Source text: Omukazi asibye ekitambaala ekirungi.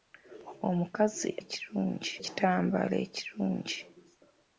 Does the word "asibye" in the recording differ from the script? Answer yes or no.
yes